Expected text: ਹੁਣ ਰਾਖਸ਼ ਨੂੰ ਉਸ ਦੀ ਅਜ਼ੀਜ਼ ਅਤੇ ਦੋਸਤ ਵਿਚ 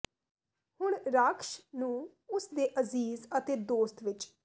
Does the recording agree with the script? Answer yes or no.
no